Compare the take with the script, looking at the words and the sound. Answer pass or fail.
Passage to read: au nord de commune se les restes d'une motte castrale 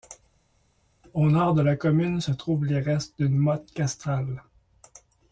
fail